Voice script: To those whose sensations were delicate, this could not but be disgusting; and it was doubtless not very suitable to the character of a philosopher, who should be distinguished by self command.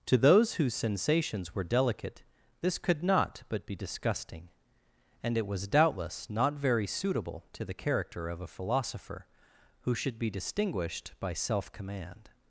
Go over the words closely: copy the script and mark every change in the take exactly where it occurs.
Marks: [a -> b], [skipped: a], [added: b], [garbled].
To those whose sensations were delicate, this could not but be disgusting; and it was doubtless not very suitable to the character of a philosopher, who should be distinguished by self command.